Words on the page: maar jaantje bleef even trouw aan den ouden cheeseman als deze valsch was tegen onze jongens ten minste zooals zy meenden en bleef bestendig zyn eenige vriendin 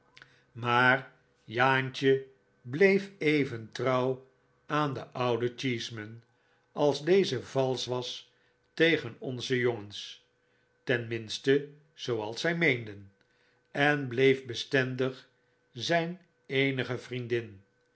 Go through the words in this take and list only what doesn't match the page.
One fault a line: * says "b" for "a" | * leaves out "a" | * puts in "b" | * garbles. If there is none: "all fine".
all fine